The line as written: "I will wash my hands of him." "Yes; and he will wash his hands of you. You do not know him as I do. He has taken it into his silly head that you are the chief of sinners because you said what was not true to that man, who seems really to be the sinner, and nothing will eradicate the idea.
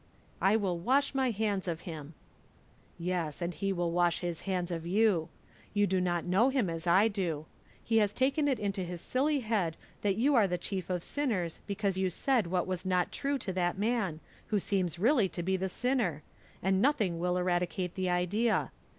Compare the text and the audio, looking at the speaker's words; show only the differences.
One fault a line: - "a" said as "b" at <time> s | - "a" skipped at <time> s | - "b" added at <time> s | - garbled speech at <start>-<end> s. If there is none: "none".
none